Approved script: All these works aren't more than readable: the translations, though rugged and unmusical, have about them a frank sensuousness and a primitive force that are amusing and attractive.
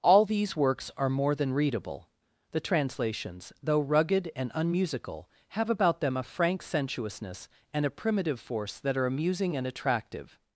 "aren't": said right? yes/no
no